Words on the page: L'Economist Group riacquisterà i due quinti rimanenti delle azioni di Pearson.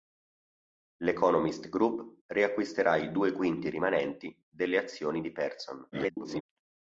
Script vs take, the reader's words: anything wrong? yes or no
yes